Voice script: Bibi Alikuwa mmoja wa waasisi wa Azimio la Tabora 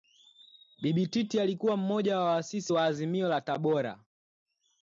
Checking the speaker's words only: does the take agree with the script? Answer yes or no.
no